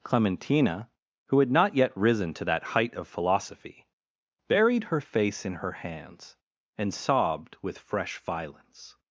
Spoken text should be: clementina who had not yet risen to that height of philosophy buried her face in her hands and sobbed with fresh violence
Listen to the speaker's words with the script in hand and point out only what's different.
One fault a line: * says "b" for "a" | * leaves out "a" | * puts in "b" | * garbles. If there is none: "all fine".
all fine